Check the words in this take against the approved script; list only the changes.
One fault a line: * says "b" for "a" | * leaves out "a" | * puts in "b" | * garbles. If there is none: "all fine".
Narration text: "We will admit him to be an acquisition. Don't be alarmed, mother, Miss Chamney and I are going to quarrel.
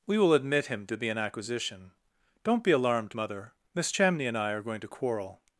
all fine